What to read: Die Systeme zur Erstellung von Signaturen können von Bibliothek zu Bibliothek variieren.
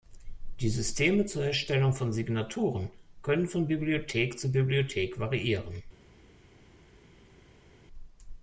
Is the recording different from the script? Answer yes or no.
no